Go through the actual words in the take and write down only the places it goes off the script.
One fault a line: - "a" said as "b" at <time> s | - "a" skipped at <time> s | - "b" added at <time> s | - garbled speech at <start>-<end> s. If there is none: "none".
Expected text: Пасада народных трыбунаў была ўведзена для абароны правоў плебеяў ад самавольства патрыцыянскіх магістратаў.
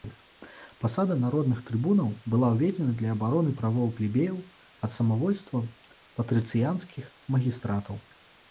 none